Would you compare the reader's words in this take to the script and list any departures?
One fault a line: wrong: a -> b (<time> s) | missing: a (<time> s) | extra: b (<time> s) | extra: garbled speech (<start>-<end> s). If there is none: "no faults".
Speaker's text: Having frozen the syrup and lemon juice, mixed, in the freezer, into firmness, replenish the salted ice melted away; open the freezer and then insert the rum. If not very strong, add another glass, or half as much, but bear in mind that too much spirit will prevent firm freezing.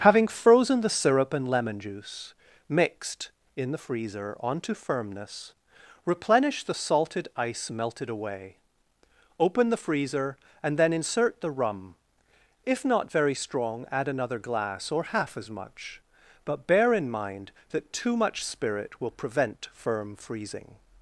wrong: into -> onto (4.4 s)